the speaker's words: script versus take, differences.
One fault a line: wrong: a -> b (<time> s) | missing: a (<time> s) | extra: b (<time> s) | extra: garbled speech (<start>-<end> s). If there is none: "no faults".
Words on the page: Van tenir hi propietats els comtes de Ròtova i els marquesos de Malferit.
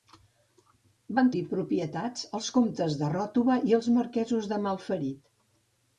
missing: tenir (1.3 s)